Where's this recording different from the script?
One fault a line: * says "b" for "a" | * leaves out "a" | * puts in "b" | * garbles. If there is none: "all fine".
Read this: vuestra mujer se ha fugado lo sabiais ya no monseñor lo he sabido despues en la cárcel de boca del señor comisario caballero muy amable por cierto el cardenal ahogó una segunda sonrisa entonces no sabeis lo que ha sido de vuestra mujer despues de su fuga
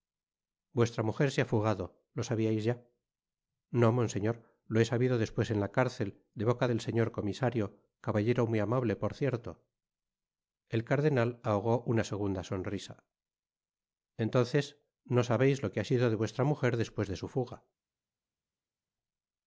all fine